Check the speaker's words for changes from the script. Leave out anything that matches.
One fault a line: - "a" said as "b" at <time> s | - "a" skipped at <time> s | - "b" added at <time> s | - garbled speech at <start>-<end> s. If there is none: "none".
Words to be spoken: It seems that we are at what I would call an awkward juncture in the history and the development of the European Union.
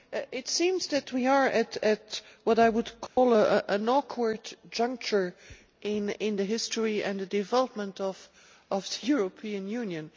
none